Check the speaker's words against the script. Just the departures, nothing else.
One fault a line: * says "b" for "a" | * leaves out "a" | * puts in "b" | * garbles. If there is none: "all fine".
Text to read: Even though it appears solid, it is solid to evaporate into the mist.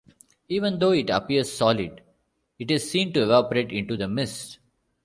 * says "seen" for "solid"